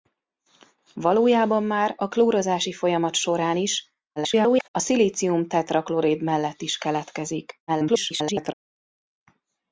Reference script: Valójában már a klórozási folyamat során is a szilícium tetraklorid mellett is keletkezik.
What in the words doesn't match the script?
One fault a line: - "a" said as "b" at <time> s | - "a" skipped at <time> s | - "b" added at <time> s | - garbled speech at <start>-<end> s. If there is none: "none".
- garbled speech at 4.2-4.7 s
- garbled speech at 7.7-8.5 s